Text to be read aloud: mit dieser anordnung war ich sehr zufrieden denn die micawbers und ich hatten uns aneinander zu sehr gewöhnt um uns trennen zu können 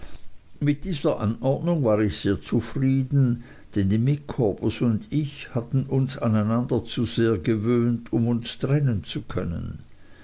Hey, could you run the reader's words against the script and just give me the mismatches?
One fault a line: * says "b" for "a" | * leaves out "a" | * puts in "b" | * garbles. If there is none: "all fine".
all fine